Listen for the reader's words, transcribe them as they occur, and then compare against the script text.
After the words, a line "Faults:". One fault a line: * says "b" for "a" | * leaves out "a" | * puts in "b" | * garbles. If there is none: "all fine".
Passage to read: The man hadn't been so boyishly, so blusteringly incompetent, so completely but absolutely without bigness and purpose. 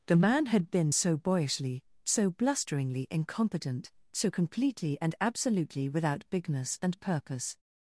The man had been so boyishly, so blusteringly incompetent, so completely and absolutely without bigness and purpose.
Faults:
* says "had" for "hadn't"
* says "and" for "but"